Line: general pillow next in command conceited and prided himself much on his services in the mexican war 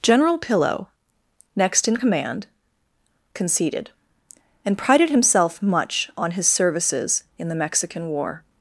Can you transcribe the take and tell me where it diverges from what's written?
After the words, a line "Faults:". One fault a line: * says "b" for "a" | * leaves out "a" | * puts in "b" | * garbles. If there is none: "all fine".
general pillow next in command conceited and prided himself much on his services in the mexican war
Faults:
all fine